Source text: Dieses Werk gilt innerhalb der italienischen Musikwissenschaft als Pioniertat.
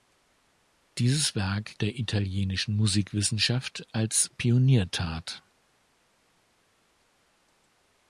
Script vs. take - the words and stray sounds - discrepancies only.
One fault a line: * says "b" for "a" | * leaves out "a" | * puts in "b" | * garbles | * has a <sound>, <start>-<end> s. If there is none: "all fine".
* leaves out "gilt innerhalb"